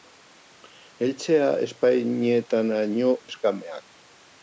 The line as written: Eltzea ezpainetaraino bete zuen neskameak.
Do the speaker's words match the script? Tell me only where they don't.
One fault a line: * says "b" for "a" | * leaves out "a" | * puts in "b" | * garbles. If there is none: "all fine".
* leaves out "bete zuen"